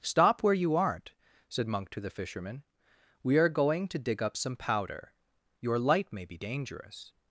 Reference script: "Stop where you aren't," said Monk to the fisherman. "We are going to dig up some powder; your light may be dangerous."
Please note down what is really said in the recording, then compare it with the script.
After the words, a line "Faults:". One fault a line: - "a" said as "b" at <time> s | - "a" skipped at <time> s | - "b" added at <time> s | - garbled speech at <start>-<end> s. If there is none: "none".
"Stop where you aren't," said Monk to the fisherman. "We are going to dig up some powder; your light may be dangerous."
Faults:
none